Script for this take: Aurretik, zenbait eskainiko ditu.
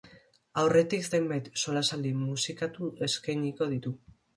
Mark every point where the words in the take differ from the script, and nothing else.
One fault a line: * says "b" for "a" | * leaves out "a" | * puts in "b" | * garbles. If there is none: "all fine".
* puts in "solasaldi musikatu"